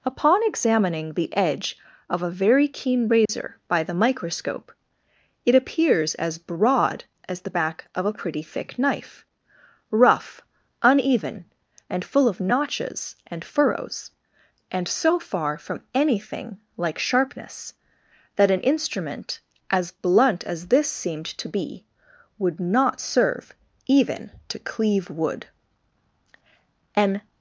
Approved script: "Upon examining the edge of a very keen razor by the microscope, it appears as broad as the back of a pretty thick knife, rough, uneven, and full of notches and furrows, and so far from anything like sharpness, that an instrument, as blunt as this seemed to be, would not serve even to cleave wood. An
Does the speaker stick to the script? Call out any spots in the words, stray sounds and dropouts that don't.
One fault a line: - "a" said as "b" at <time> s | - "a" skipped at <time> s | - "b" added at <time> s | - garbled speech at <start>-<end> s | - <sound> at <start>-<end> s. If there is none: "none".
- dropout at 3.3-3.3 s